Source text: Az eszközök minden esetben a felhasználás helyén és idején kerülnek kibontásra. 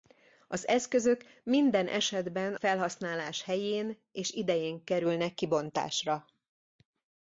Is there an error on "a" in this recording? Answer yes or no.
yes